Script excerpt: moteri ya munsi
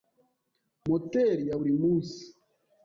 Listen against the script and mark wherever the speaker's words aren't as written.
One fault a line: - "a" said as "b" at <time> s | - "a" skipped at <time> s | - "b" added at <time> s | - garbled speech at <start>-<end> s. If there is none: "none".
- "buri" added at 1.6 s